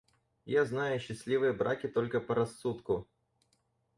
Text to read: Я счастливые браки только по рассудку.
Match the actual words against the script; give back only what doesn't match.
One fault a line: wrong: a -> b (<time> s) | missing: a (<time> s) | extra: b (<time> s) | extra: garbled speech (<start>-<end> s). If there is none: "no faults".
extra: знаю (0.6 s)